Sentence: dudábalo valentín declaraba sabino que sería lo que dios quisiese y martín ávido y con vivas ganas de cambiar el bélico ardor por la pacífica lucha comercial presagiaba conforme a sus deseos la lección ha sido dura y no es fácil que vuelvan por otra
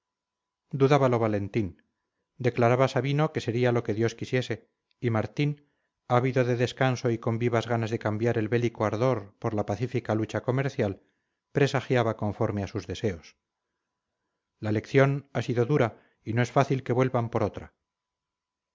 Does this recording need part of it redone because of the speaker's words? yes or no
yes